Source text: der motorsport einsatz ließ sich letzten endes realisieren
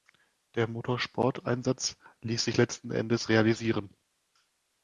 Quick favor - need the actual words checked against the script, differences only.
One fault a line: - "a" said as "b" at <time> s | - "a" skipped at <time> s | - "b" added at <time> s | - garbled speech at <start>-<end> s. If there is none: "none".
none